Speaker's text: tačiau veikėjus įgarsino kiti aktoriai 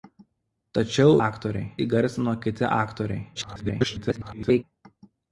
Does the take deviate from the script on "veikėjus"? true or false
true